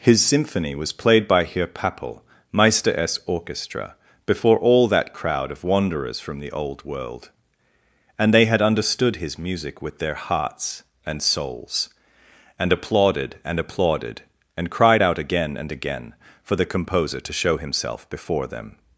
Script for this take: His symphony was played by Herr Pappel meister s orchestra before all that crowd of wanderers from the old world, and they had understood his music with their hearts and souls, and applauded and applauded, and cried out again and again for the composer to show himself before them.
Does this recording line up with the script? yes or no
yes